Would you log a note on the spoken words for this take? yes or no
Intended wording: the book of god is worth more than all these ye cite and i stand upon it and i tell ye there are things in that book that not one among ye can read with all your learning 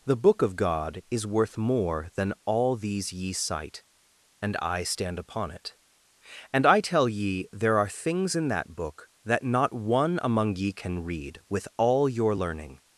no